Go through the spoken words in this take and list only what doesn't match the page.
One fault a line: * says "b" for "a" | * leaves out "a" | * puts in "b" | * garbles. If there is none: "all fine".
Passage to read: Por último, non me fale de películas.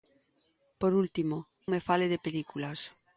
* leaves out "non"